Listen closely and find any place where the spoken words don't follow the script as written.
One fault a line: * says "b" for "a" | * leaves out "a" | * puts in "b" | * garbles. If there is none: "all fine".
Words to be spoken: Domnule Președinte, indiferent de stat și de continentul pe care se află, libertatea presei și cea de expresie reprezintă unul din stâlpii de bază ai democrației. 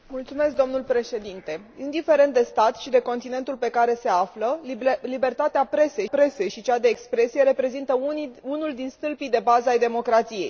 * puts in "presei"